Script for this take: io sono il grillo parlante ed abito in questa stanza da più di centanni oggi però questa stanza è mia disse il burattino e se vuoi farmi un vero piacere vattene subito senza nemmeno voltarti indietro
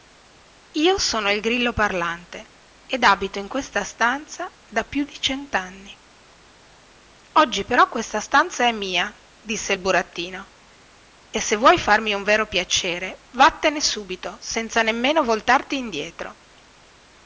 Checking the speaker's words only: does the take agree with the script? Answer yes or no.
yes